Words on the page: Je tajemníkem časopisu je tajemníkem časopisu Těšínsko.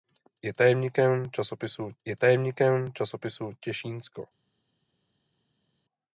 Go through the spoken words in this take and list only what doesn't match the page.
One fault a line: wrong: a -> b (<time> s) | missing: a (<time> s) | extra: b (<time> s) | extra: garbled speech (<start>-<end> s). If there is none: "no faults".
no faults